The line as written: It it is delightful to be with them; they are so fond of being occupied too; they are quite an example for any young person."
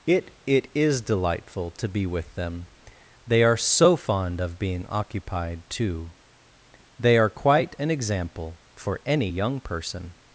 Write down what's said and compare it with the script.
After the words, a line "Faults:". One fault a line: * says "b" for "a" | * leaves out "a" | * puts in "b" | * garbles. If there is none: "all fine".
It it is delightful to be with them; they are so fond of being occupied too; they are quite an example for any young person."
Faults:
all fine